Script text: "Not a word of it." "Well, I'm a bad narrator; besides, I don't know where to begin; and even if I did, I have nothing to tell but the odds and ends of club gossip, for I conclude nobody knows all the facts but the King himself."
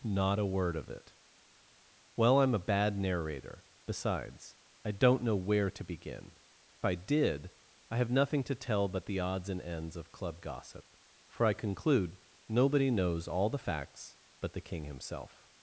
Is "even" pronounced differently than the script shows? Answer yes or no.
yes